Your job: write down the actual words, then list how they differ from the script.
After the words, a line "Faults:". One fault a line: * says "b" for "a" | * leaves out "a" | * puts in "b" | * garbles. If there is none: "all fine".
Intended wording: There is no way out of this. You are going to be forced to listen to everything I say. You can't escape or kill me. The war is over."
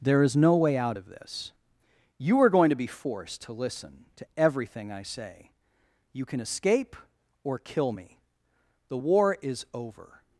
There is no way out of this. You are going to be forced to listen to everything I say. You can escape or kill me. The war is over."
Faults:
* says "can" for "can't"